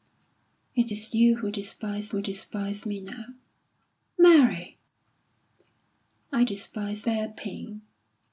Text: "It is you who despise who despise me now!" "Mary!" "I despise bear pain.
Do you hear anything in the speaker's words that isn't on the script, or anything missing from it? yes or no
no